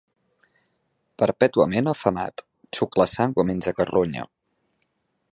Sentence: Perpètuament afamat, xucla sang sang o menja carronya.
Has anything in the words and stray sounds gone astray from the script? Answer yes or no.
yes